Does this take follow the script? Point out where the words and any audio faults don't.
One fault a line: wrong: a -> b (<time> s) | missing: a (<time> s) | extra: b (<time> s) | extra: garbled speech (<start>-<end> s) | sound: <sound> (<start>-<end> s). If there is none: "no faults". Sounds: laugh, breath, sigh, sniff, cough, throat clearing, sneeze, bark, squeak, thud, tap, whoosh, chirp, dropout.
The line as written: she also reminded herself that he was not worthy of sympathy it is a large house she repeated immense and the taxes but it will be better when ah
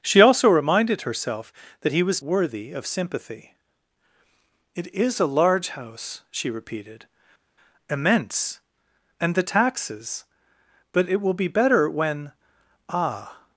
missing: not (2.2 s)